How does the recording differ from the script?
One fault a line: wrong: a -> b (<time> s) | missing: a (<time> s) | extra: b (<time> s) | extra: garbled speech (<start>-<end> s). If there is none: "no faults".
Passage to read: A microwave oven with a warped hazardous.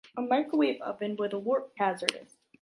no faults